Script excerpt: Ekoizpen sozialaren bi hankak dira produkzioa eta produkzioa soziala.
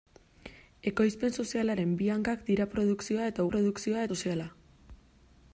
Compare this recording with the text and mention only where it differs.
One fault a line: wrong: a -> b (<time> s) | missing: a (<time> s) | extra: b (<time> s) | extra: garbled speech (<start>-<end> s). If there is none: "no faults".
no faults